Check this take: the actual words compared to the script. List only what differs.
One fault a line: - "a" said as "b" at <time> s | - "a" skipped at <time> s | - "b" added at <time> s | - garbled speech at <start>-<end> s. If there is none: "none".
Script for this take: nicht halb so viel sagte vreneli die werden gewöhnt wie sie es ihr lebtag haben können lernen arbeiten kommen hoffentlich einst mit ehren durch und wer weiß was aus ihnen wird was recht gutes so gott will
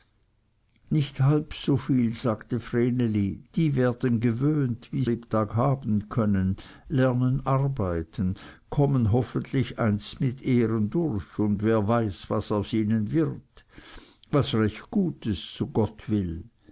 - "sie es ihr" skipped at 5.0 s